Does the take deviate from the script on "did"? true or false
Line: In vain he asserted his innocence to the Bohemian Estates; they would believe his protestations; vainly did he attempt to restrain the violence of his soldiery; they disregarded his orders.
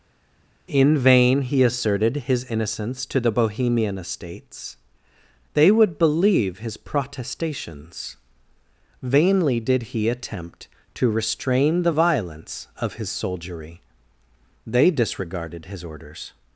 false